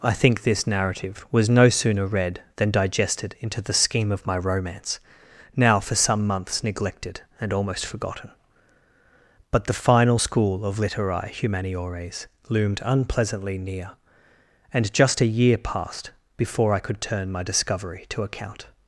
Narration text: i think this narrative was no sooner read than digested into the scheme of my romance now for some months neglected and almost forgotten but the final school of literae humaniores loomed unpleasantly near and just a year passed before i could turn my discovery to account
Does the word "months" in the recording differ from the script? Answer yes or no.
no